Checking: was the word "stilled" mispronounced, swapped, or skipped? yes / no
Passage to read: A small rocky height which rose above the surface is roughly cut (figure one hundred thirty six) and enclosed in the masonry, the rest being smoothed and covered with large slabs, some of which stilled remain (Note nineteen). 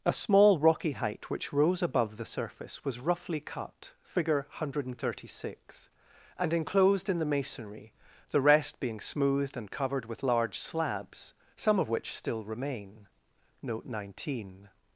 yes